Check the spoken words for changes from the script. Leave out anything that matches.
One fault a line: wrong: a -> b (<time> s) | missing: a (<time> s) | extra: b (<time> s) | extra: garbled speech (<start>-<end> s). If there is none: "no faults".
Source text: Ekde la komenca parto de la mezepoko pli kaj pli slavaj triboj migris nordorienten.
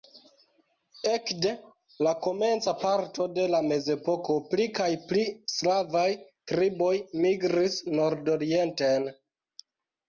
no faults